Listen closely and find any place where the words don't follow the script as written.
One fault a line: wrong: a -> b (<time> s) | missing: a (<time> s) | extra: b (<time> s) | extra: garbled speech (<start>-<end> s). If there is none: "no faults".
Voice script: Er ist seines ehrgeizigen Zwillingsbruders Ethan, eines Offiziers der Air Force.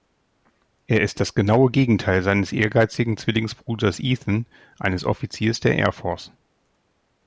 extra: das genaue Gegenteil (1.2 s)